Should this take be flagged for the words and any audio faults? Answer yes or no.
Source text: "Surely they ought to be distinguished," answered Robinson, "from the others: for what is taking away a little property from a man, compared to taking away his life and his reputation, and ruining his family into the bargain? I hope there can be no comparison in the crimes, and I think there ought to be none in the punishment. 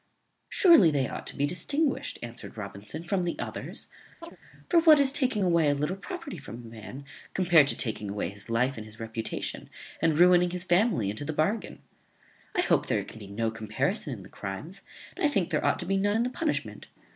yes